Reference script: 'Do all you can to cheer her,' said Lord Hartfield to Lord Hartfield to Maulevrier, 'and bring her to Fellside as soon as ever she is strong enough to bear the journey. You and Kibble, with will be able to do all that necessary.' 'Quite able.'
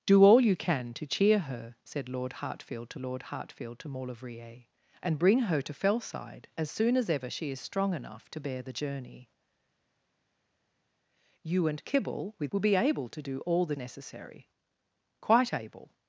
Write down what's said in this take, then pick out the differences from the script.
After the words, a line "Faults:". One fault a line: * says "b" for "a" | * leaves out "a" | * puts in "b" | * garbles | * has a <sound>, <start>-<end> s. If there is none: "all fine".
'Do all you can to cheer her,' said Lord Hartfield to Lord Hartfield to Maulevrier, 'and bring her to Fellside as soon as ever she is strong enough to bear the journey. You and Kibble, with will be able to do all that necessary.' 'Quite able.'
Faults:
all fine